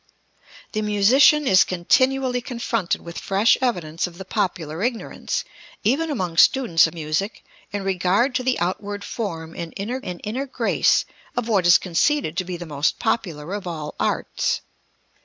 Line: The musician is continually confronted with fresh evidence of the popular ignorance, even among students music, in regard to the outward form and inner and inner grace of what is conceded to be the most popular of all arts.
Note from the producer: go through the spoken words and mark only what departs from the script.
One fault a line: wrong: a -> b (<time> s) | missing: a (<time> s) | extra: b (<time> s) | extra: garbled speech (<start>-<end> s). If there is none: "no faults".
no faults